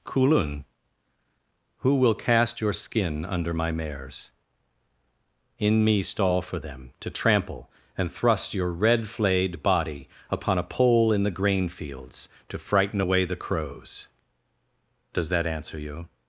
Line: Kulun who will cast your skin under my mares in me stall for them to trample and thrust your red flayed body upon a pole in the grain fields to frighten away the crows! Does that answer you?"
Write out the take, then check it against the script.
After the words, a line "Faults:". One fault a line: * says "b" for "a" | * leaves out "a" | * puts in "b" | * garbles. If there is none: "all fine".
Kulun who will cast your skin under my mares in me stall for them to trample and thrust your red flayed body upon a pole in the grain fields to frighten away the crows! Does that answer you?"
Faults:
all fine